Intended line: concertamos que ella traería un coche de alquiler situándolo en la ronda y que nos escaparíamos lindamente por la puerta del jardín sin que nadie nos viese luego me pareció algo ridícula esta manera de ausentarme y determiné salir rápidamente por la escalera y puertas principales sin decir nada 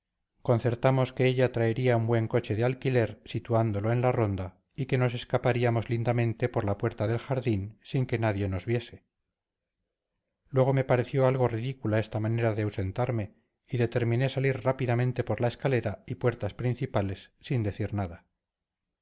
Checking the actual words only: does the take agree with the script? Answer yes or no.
no